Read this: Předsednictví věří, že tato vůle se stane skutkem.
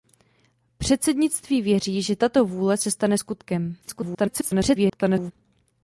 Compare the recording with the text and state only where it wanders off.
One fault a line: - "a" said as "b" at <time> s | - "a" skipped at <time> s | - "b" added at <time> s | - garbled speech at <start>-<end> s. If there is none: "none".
- garbled speech at 3.8-5.3 s